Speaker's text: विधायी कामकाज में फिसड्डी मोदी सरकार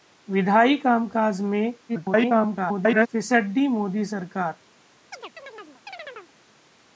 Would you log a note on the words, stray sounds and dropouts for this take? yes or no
yes